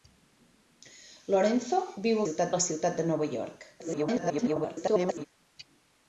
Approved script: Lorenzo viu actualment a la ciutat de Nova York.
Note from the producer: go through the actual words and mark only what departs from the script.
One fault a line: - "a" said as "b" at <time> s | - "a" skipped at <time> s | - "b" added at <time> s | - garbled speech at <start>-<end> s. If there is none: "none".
- "actualment" said as "ciutat" at 2.2 s
- garbled speech at 3.8-5.2 s